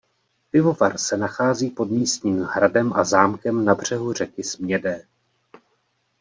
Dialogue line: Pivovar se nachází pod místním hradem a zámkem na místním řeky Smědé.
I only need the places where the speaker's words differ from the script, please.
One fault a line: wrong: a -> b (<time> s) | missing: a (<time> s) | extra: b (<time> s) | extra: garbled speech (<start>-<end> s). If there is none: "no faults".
wrong: místním -> břehu (3.8 s)